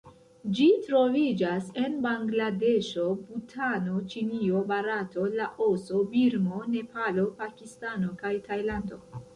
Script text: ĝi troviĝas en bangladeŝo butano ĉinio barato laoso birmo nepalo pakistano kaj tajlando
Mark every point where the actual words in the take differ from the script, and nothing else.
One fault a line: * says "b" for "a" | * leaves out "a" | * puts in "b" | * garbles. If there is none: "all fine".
all fine